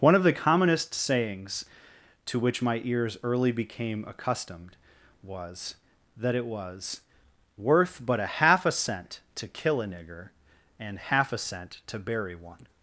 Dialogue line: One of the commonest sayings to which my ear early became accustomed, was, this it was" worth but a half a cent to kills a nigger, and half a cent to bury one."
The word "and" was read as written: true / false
true